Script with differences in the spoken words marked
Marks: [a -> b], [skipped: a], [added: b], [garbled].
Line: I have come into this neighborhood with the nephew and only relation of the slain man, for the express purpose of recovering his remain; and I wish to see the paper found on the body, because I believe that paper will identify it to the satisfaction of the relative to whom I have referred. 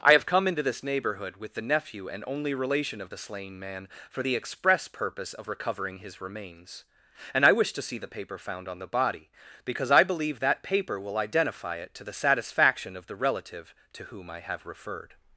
I have come into this neighborhood with the nephew and only relation of the slain man, for the express purpose of recovering his [remain; -> remains] and I wish to see the paper found on the body, because I believe that paper will identify it to the satisfaction of the relative to whom I have referred.